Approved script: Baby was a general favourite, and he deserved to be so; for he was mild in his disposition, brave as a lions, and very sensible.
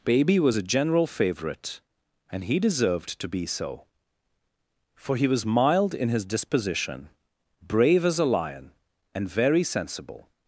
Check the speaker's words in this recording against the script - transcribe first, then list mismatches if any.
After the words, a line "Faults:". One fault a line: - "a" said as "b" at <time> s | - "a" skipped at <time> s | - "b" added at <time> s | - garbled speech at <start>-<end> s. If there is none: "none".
Baby was a general favourite, and he deserved to be so; for he was mild in his disposition, brave as a lion, and very sensible.
Faults:
- "lions" said as "lion" at 8.2 s